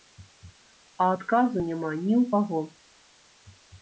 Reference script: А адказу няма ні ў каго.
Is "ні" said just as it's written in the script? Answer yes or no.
yes